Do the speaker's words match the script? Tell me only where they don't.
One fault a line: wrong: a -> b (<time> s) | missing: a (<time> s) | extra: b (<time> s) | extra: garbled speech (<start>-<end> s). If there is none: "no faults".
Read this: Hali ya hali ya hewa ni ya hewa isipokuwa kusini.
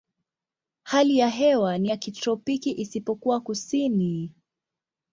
missing: hali ya (1.3 s)
wrong: hewa -> kitropiki (2.0 s)